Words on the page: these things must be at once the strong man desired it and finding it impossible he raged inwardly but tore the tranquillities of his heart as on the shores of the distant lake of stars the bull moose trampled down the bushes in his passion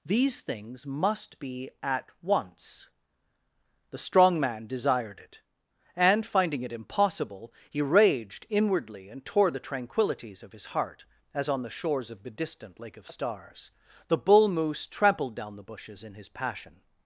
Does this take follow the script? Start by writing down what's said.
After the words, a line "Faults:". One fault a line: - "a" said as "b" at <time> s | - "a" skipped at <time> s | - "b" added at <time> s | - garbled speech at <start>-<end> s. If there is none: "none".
these things must be at once the strong man desired it and finding it impossible he raged inwardly and tore the tranquillities of his heart as on the shores of the distant lake of stars the bull moose trampled down the bushes in his passion
Faults:
- "but" said as "and" at 9.1 s